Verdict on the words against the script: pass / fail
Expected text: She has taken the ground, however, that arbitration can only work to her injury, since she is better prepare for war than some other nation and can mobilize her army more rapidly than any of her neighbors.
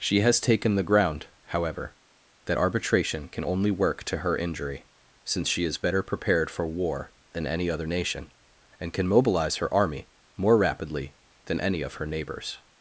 fail